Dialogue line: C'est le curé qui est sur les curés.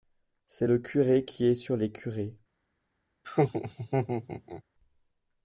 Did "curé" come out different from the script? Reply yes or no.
no